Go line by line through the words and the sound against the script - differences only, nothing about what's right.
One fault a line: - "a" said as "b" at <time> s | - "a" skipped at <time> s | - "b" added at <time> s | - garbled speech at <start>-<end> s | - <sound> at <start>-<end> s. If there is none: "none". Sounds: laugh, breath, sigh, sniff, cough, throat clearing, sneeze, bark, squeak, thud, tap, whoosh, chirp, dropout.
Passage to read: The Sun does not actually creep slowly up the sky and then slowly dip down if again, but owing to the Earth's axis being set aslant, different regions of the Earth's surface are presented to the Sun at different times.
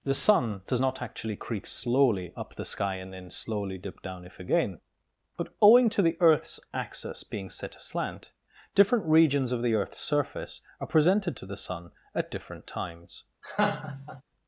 - laugh at 13.4-14.2 s